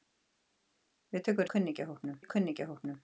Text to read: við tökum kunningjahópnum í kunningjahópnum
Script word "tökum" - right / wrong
right